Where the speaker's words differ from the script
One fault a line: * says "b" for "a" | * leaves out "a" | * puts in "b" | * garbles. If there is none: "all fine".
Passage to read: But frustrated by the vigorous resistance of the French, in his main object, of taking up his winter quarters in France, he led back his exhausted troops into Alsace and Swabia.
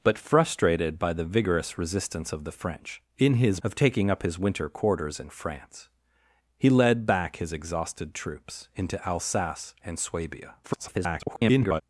* leaves out "main object"
* garbles